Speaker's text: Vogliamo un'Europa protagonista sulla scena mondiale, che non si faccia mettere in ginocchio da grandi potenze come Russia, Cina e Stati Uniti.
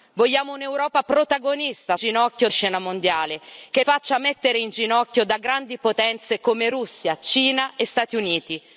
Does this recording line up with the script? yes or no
no